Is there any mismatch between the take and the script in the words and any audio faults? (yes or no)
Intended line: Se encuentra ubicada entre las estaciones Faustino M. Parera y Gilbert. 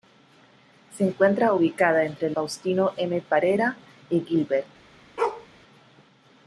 yes